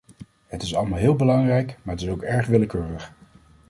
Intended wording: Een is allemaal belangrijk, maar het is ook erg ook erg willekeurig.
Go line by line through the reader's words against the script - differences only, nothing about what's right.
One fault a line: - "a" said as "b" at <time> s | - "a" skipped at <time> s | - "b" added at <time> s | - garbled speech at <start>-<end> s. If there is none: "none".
- "Een" said as "Het" at 0.5 s
- "heel" added at 1.0 s
- "ook erg" skipped at 2.5 s